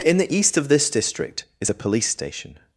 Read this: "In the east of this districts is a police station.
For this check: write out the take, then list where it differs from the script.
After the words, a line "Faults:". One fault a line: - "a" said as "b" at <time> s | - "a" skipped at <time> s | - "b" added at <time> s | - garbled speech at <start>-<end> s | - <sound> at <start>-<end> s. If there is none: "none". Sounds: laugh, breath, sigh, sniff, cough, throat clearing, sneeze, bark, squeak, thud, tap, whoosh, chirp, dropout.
"In the east of this district is a police station.
Faults:
- "districts" said as "district" at 0.9 s